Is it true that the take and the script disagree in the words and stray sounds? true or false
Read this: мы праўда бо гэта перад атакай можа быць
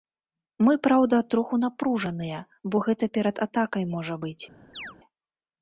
true